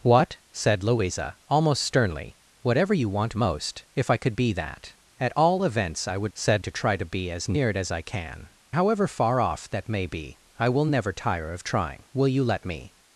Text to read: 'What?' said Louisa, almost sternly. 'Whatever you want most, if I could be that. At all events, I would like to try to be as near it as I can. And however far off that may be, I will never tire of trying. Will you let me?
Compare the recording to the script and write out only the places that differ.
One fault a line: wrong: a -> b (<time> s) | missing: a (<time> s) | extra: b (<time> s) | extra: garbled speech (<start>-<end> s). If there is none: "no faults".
wrong: like -> said (6.3 s)
missing: And (8.5 s)